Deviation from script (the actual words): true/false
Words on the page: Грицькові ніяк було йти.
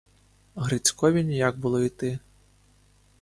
false